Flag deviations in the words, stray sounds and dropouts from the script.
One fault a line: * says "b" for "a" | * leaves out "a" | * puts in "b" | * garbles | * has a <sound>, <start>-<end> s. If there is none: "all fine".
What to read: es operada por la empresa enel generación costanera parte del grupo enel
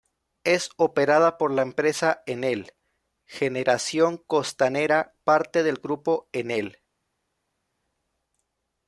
all fine